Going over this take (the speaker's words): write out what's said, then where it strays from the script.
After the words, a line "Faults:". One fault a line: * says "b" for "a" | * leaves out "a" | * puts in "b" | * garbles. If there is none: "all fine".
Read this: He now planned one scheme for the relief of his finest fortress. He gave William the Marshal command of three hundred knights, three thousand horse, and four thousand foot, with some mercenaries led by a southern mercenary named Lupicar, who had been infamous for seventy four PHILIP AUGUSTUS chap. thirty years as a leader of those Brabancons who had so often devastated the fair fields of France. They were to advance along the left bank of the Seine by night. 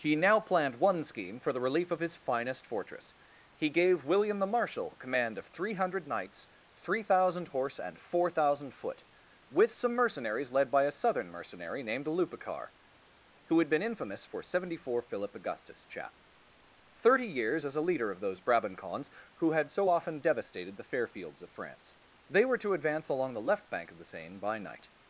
He now planned one scheme for the relief of his finest fortress. He gave William the Marshal command of three hundred knights, three thousand horse, and four thousand foot, with some mercenaries led by a southern mercenary named Lupicar, who had been infamous for seventy four PHILIP AUGUSTUS chap. thirty years as a leader of those Brabancons who had so often devastated the fair fields of France. They were to advance along the left bank of the Seine by night.
Faults:
all fine